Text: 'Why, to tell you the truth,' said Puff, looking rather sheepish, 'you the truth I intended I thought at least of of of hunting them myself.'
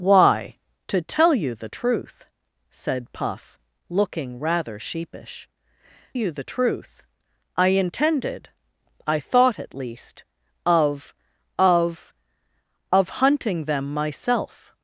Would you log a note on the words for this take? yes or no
no